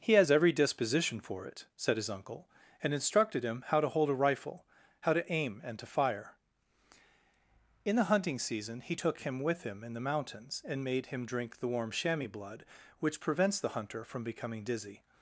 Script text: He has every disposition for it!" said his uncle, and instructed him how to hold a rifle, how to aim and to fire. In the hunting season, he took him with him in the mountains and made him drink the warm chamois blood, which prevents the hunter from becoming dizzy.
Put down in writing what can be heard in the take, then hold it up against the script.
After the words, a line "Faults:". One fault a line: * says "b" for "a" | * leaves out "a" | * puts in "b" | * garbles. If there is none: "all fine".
He has every disposition for it!" said his uncle, and instructed him how to hold a rifle, how to aim and to fire. In the hunting season, he took him with him in the mountains and made him drink the warm chamois blood, which prevents the hunter from becoming dizzy.
Faults:
all fine